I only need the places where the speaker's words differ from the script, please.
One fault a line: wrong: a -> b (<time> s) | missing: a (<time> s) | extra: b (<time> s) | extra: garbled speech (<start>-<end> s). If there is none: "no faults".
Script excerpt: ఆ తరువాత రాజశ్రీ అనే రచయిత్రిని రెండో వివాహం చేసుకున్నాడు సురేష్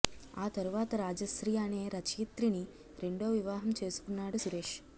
no faults